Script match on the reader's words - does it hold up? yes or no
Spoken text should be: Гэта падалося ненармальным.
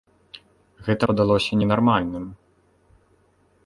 yes